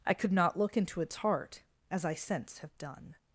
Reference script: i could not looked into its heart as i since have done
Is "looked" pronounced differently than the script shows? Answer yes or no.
yes